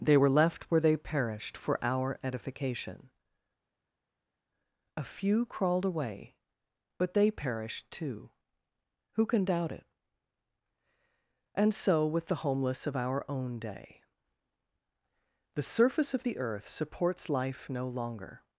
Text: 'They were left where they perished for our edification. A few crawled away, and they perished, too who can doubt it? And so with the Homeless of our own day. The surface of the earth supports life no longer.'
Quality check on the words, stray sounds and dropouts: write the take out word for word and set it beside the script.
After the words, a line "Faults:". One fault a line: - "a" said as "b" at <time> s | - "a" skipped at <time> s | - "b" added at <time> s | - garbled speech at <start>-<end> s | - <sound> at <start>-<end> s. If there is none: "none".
'They were left where they perished for our edification. A few crawled away, but they perished, too who can doubt it? And so with the Homeless of our own day. The surface of the earth supports life no longer.'
Faults:
- "and" said as "but" at 7.0 s